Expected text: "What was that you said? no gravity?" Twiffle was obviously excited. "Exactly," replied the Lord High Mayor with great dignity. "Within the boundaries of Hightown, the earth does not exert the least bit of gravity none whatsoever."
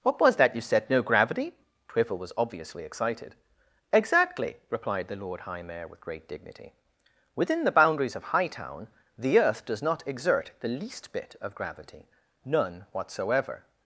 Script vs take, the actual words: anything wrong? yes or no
no